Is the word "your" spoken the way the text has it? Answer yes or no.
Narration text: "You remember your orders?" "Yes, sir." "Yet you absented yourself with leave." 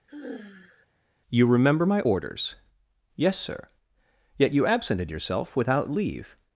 no